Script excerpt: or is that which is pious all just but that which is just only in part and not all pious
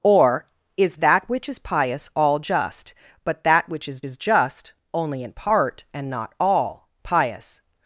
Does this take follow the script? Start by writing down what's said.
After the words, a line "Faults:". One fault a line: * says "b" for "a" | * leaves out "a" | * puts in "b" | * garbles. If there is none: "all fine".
or is that which is pious all just but that which is is just only in part and not all pious
Faults:
* puts in "is"